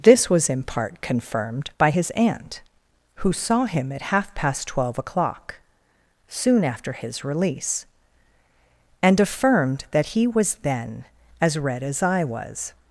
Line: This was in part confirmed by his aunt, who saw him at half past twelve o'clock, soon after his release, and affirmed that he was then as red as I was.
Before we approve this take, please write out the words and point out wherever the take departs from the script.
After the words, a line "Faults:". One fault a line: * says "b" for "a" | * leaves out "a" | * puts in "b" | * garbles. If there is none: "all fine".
This was in part confirmed by his aunt, who saw him at half past twelve o'clock, soon after his release, and affirmed that he was then as red as I was.
Faults:
all fine